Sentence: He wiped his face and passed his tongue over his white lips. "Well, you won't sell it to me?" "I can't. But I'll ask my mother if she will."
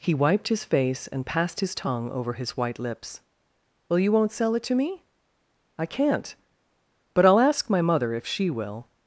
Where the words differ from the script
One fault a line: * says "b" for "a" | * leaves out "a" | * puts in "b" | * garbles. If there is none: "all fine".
all fine